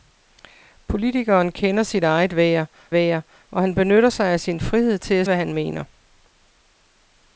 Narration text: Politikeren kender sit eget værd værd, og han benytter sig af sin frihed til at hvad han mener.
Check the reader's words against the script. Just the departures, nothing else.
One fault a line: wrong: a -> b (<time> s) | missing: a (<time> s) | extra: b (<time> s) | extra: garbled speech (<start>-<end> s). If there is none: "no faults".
no faults